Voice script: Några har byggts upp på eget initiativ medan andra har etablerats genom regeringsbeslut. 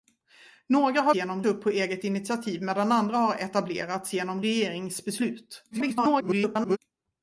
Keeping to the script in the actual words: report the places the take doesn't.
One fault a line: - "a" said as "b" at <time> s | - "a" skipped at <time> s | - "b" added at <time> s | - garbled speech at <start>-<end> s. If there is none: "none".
- "byggts" said as "genom" at 1.1 s
- garbled speech at 5.7-6.8 s